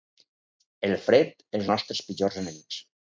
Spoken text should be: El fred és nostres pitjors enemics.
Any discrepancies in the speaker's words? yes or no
no